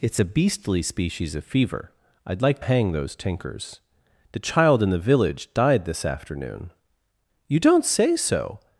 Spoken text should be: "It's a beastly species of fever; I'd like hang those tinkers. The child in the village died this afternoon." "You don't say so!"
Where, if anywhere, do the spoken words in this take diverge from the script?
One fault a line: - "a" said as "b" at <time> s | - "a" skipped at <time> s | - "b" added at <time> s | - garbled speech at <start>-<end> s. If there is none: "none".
none